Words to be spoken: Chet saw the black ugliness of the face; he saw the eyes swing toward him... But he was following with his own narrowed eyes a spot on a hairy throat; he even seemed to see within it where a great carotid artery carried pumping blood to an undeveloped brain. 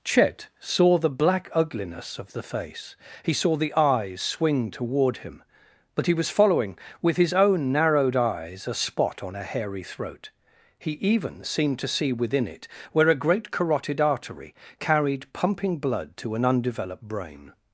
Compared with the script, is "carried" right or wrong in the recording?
right